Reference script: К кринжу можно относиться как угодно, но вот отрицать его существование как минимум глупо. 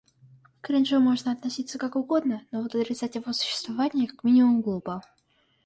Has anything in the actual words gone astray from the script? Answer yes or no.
no